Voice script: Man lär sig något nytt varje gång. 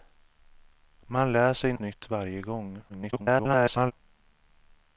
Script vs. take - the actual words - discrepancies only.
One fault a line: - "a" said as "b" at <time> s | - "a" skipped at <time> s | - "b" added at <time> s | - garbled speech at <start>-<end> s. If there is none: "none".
- "något" skipped at 1.7 s
- garbled speech at 2.9-3.9 s